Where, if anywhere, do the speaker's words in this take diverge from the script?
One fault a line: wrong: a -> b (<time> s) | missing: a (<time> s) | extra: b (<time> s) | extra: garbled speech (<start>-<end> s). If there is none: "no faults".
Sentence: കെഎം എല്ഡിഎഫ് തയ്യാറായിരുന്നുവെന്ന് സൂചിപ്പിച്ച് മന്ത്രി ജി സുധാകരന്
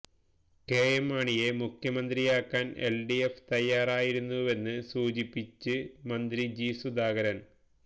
extra: മാണിയെ മുഖ്യമന്ത്രിയാക്കാന് (1.1 s)